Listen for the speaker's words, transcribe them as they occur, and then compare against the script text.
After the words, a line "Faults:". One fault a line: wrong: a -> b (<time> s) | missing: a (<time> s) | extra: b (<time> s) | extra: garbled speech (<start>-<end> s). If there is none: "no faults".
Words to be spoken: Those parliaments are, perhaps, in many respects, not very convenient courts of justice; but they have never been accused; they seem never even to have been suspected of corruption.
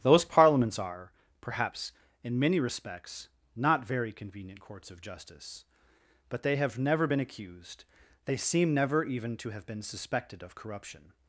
Those parliaments are, perhaps, in many respects, not very convenient courts of justice; but they have never been accused; they seem never even to have been suspected of corruption.
Faults:
no faults